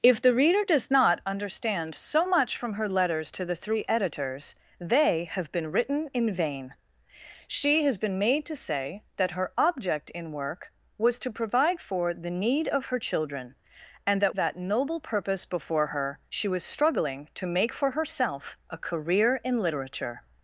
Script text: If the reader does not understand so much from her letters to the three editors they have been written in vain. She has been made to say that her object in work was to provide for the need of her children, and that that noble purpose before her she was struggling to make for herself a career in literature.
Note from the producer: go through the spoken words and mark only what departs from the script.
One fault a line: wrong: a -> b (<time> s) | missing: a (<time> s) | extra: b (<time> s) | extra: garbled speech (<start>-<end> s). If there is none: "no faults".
no faults